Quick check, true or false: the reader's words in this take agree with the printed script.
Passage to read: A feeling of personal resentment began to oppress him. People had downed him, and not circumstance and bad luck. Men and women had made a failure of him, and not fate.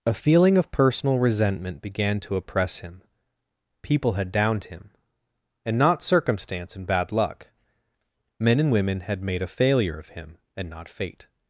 true